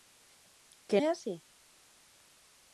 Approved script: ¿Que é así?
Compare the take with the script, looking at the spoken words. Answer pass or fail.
pass